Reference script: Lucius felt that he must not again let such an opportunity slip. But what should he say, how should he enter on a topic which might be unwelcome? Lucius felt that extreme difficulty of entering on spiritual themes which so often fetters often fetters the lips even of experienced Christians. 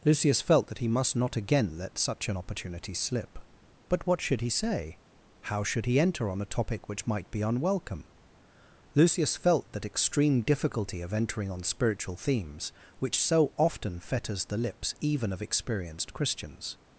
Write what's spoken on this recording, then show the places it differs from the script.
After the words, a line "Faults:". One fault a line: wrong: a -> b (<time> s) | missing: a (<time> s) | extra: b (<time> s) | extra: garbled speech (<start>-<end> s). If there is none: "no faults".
Lucius felt that he must not again let such an opportunity slip. But what should he say, how should he enter on a topic which might be unwelcome? Lucius felt that extreme difficulty of entering on spiritual themes which so often fetters the lips even of experienced Christians.
Faults:
missing: often fetters (14.5 s)